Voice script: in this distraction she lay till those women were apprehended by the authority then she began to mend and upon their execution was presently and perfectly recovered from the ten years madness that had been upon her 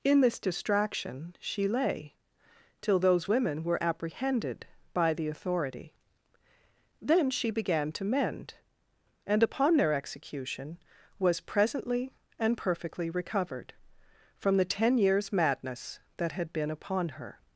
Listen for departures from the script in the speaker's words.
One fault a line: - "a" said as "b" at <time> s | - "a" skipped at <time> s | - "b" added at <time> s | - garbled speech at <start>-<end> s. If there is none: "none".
none